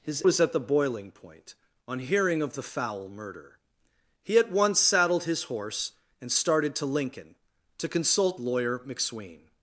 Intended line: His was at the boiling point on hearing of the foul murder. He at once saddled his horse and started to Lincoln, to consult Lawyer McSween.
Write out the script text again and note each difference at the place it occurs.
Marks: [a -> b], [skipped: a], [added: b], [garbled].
His was at the boiling point on hearing of the foul murder. He at once saddled his horse and started to Lincoln, to consult Lawyer McSween.